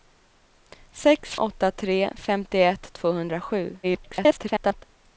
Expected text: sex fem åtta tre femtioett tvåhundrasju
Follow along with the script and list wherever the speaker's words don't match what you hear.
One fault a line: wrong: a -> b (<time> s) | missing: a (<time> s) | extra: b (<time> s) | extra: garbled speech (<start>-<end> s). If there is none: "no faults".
missing: fem (1.4 s)
extra: garbled speech (3.8-4.8 s)